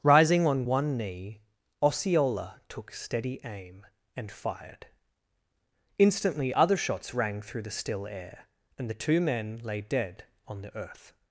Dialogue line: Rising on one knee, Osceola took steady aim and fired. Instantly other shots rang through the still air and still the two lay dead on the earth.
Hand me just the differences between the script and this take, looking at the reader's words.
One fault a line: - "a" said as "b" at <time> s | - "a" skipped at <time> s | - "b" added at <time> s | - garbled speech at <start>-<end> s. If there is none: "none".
- "still" skipped at 8.9 s
- "men" added at 9.2 s